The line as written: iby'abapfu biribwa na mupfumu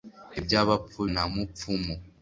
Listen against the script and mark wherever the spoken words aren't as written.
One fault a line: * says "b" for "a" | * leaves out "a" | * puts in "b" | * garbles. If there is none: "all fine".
* leaves out "biribwa"